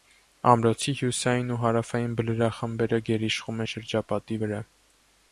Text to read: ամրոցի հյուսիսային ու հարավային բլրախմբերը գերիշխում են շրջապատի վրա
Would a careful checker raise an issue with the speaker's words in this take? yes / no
no